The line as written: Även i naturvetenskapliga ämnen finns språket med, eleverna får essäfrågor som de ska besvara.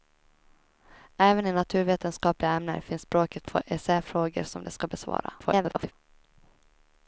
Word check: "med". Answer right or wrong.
wrong